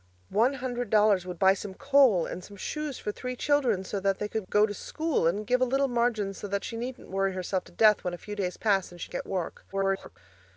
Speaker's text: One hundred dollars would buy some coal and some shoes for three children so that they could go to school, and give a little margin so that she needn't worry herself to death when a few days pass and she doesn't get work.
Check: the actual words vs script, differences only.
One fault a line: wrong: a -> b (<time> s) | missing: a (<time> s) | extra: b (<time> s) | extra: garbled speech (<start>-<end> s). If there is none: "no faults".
missing: doesn't (9.1 s)
extra: garbled speech (9.7-10.2 s)